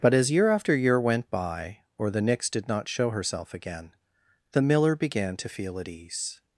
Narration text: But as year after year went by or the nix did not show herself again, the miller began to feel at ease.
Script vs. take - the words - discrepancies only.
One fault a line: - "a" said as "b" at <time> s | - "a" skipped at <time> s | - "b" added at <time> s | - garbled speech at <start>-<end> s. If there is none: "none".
none